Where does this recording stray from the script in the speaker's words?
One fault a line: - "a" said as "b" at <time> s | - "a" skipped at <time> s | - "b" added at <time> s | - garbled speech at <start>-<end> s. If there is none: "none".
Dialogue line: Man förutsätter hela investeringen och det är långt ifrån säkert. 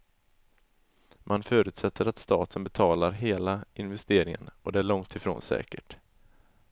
- "att staten betalar" added at 2.1 s